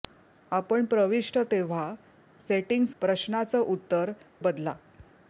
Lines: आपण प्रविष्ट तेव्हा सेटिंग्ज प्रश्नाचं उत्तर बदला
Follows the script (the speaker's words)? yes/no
yes